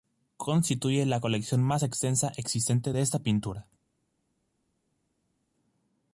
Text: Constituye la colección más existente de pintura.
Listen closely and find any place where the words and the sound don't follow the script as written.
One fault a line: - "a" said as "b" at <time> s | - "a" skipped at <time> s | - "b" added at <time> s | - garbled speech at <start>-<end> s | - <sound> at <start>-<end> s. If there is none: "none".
- "extensa" added at 1.8 s
- "esta" added at 3.0 s